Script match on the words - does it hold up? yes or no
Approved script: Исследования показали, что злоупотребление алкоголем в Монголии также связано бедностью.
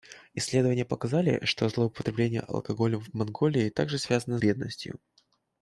yes